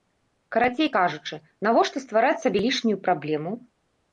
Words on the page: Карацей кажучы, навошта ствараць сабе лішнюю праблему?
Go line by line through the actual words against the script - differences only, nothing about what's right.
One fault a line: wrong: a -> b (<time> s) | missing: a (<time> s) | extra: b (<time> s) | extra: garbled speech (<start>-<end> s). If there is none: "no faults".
no faults